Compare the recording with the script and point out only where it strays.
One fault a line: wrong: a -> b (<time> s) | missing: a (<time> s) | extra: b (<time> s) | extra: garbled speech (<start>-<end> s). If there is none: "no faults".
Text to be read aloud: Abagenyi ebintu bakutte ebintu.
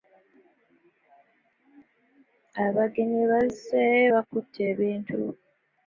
wrong: ebintu -> bazze (3.3 s)